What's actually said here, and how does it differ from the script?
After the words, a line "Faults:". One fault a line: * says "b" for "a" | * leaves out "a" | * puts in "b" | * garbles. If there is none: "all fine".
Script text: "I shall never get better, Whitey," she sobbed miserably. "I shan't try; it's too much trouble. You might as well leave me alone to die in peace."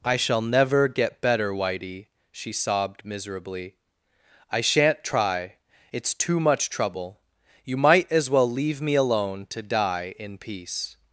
"I shall never get better, Whitey," she sobbed miserably. "I shan't try; it's too much trouble. You might as well leave me alone to die in peace."
Faults:
all fine